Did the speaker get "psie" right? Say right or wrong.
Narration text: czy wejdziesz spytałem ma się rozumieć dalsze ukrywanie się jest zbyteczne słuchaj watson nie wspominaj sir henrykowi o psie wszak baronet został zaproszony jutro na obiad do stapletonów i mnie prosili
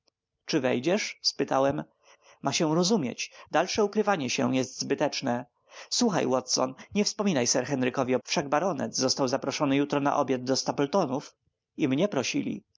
wrong